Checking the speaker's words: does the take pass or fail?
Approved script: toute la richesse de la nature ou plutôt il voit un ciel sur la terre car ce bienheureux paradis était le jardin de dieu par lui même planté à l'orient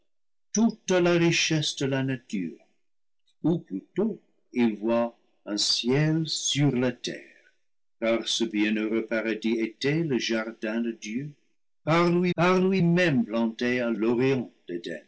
fail